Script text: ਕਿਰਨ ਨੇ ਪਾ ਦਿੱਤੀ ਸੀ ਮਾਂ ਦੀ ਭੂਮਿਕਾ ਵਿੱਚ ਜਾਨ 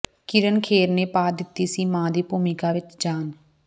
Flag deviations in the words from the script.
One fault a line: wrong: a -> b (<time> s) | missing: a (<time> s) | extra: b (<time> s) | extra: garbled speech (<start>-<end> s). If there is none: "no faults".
extra: ਖੇਰ (0.6 s)